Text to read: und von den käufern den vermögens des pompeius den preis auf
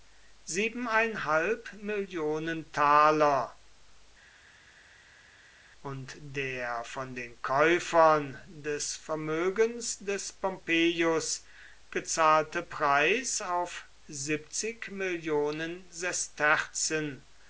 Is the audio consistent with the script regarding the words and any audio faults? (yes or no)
no